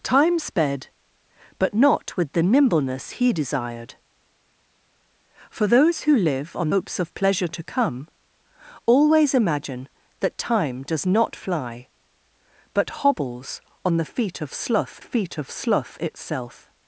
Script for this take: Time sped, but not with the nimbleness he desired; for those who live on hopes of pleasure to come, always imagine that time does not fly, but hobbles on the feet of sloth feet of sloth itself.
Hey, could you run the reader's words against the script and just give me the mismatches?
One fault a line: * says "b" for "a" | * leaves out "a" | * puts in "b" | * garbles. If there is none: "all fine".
all fine